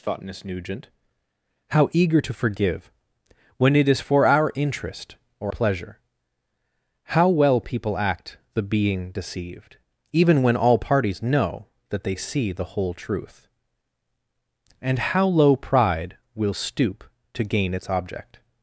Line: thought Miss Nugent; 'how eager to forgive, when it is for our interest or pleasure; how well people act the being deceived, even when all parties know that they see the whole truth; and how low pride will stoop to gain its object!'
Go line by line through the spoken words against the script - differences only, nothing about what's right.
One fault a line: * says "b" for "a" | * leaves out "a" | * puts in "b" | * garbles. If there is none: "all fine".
all fine